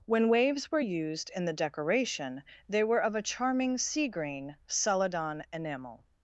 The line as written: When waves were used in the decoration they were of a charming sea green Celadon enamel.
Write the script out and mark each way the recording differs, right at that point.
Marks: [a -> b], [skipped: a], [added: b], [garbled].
When waves were used in the decoration they were of a charming sea green Celadon enamel.